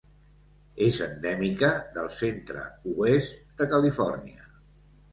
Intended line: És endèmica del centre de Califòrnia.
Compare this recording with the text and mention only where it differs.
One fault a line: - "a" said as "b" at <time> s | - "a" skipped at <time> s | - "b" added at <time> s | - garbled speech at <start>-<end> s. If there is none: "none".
- "oest" added at 3.0 s